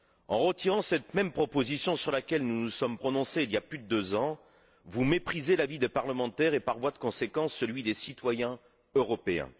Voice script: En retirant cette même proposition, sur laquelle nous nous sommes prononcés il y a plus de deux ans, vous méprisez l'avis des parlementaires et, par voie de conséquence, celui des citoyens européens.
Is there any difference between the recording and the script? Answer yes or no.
no